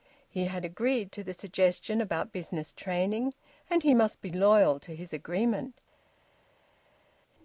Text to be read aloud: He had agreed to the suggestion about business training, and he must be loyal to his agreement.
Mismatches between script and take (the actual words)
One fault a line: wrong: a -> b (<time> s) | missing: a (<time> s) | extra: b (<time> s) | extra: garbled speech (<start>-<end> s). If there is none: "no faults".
no faults